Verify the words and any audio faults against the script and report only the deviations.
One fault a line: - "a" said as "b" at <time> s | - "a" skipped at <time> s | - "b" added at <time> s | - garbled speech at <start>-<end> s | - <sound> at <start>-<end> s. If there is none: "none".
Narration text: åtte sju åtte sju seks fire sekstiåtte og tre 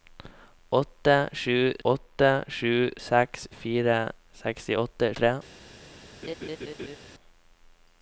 - laugh at 6.2-7.0 s